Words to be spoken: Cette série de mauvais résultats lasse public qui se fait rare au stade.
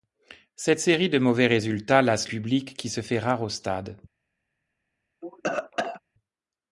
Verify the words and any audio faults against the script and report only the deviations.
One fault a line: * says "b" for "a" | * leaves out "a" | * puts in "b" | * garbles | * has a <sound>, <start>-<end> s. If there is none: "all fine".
* has a cough, 5.2-6.0 s